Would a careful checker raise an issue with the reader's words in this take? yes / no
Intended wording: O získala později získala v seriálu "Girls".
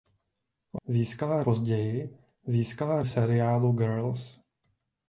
no